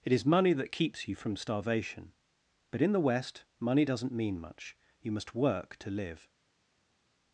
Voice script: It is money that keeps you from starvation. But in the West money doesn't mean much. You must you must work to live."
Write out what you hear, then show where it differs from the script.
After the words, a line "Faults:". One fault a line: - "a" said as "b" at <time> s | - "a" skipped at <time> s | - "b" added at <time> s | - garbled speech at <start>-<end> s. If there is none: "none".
It is money that keeps you from starvation. But in the West money doesn't mean much. You must work to live."
Faults:
- "you must" skipped at 5.3 s